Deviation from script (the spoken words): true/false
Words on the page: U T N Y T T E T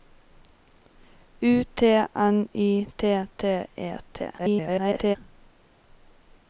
true